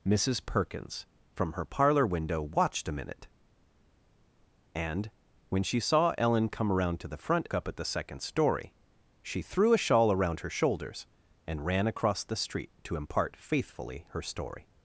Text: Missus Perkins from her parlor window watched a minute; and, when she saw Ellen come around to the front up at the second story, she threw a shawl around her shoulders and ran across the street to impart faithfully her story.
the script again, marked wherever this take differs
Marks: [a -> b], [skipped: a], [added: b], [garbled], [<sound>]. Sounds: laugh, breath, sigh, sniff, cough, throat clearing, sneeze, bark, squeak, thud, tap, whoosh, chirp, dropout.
Missus Perkins from her parlor window watched a minute; and, when she saw Ellen come around to the front up at the second story, she threw a shawl around her shoulders and ran across the street to impart faithfully her story.